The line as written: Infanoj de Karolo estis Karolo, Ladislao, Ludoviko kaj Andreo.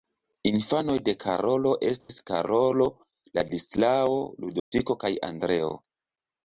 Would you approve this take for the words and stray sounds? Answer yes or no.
no